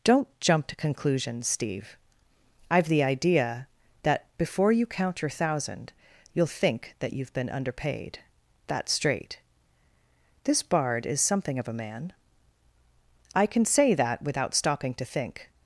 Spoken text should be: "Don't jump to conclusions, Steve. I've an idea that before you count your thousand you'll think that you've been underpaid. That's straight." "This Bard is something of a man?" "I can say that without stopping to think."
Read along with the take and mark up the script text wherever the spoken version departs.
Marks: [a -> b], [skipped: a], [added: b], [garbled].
"Don't jump to conclusions, Steve. I've [an -> the] idea that before you count your thousand you'll think that you've been underpaid. That's straight." "This Bard is something of a man?" "I can say that without stopping to think."